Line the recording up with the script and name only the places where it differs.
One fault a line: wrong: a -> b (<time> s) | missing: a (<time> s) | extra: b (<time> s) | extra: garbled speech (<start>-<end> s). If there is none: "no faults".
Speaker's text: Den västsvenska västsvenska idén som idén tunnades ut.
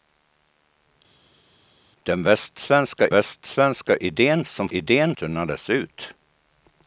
no faults